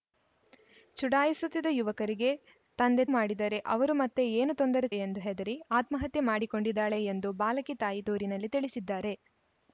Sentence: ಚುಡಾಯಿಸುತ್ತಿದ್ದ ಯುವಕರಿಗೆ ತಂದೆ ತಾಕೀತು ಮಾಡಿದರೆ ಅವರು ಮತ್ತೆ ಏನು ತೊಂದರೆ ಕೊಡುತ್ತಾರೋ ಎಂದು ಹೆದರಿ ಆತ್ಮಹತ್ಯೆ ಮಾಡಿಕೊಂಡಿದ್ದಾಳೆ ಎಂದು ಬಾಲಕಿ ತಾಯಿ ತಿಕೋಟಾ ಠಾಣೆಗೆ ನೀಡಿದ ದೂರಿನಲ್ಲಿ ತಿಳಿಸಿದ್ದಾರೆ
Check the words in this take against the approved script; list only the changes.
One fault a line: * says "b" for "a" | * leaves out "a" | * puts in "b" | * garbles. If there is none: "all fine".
* leaves out "ತಾಕೀತು"
* leaves out "ಕೊಡುತ್ತಾರೋ"
* leaves out "ತಿಕೋಟಾ ಠಾಣೆಗೆ ನೀಡಿದ"